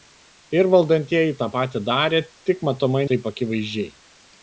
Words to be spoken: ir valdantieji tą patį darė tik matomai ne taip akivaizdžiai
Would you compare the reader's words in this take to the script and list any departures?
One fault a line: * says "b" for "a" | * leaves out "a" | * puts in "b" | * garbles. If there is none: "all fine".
* leaves out "ne"